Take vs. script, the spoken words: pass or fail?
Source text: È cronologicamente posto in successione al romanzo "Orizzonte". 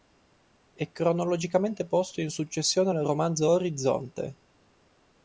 pass